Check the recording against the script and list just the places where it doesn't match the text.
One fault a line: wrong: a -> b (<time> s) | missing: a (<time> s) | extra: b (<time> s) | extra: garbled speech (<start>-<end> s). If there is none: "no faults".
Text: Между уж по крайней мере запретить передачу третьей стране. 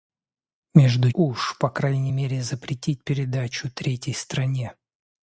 no faults